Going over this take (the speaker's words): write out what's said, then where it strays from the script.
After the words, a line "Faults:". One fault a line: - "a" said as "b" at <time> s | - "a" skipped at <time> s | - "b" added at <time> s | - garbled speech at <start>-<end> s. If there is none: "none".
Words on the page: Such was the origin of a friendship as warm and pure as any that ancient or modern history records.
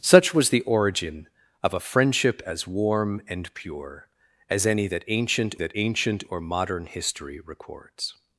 Such was the origin of a friendship as warm and pure as any that ancient that ancient or modern history records.
Faults:
- "that ancient" added at 5.6 s